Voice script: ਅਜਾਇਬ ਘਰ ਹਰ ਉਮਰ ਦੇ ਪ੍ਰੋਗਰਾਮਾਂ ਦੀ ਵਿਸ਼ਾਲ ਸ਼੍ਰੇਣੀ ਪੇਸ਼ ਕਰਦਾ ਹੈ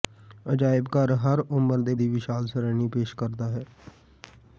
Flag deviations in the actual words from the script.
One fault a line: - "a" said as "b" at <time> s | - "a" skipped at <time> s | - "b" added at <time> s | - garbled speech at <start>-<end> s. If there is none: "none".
- "ਪ੍ਰੋਗਰਾਮਾਂ" skipped at 1.9 s